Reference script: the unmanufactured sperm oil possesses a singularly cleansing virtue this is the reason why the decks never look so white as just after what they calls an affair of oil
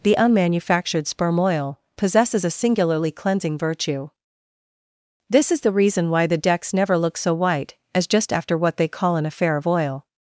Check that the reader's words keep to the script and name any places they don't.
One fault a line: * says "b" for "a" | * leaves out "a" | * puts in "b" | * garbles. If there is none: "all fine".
* says "call" for "calls"